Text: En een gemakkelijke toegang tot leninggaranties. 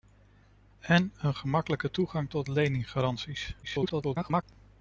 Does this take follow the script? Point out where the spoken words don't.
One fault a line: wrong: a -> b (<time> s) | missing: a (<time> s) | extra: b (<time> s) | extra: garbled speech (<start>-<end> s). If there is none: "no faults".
extra: garbled speech (3.6-4.4 s)